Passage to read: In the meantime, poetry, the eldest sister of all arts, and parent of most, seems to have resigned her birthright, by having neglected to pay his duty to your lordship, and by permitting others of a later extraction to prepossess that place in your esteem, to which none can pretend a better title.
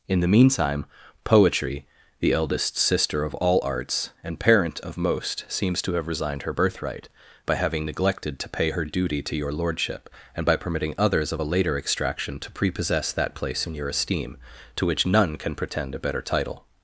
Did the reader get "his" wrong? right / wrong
wrong